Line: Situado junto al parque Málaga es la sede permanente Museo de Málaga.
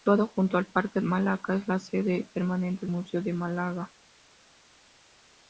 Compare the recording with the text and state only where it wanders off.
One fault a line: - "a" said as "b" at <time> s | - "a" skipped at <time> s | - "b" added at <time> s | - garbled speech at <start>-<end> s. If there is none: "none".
none